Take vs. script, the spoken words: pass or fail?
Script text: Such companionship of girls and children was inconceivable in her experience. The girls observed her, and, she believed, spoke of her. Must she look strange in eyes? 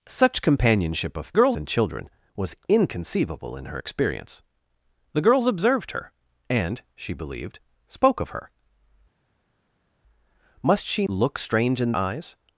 pass